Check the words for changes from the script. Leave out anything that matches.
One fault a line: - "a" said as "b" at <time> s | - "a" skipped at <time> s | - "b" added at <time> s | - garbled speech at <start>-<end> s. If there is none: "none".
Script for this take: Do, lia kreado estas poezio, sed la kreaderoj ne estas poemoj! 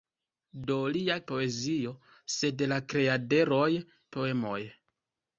- "kreado estas" skipped at 1.2 s
- "ne estas" skipped at 3.7 s